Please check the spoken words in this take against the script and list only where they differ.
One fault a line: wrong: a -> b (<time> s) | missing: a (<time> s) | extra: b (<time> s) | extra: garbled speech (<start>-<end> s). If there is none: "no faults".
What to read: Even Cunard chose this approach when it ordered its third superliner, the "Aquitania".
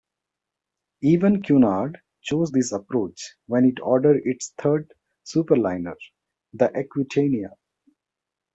no faults